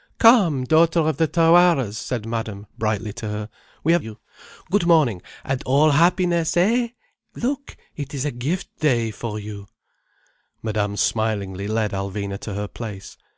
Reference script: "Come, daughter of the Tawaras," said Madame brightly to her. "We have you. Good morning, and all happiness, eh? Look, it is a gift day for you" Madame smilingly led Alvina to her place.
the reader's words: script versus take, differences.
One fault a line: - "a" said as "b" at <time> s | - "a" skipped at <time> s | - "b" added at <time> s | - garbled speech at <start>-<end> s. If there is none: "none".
none